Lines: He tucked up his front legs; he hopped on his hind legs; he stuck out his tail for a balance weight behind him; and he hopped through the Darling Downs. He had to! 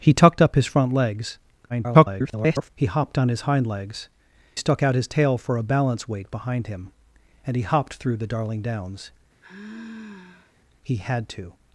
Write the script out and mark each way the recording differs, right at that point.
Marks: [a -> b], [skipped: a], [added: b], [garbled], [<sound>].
He tucked up his front legs; [garbled] he hopped on his hind legs; [skipped: he] stuck out his tail for a balance weight behind him; and he hopped through the Darling Downs. [sigh] He had to!